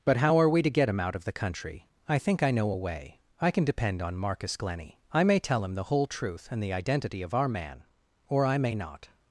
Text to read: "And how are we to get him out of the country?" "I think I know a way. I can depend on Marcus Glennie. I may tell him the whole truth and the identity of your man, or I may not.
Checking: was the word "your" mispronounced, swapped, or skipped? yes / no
yes